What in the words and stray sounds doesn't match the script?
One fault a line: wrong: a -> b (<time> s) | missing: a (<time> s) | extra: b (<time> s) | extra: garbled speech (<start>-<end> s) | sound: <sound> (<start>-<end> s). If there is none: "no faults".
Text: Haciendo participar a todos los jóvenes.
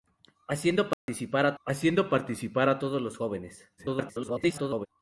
sound: dropout (0.9-1.1 s)
extra: haciendo participar a (1.6 s)
extra: garbled speech (3.8-4.9 s)